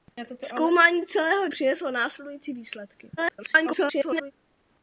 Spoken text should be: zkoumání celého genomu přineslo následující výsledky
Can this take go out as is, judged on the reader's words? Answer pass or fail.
fail